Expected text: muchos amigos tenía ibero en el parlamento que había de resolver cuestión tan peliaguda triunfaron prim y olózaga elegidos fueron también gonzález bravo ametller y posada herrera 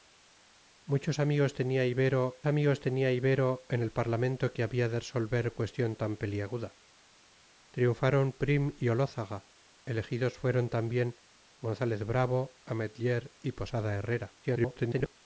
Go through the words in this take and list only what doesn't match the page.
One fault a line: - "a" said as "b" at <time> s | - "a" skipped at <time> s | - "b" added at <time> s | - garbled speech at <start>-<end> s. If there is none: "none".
- "amigos tenía ibero" added at 2.5 s
- garbled speech at 14.4-15.1 s